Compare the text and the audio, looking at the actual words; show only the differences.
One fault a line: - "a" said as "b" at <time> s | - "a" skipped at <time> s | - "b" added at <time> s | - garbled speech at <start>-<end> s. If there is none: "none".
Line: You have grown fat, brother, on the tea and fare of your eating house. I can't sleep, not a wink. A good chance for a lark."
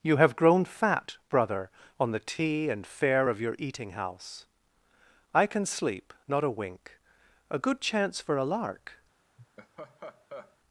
- "can't" said as "can" at 5.5 s